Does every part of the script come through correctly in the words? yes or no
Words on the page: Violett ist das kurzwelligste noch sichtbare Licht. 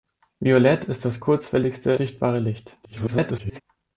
no